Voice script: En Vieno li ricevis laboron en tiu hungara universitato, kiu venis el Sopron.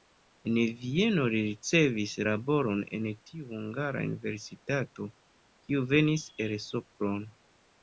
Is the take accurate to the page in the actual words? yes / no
yes